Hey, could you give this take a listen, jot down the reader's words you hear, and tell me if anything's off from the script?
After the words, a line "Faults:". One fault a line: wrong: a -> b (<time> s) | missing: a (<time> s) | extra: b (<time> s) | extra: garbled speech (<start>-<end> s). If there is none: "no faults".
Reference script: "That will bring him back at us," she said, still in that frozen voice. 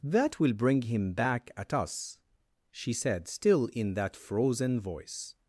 "That will bring him back at us," she said, still in that frozen voice.
Faults:
no faults